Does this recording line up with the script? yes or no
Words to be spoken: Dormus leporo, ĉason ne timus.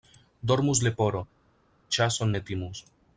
yes